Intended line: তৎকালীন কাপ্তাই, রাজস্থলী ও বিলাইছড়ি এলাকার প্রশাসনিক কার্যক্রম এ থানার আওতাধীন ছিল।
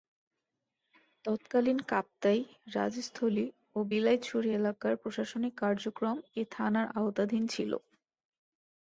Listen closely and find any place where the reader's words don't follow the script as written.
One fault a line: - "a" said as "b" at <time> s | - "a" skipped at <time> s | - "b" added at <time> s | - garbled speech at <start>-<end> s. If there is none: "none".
none